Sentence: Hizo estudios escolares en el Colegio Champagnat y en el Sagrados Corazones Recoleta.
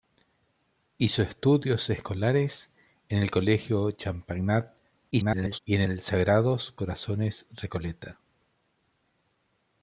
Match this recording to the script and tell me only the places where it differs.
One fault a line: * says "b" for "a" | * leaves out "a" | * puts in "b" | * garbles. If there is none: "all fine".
* garbles